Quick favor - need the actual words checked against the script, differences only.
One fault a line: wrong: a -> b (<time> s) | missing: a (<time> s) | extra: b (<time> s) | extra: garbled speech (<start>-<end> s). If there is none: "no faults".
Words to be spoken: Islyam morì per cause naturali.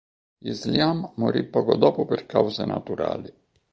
extra: poco dopo (1.4 s)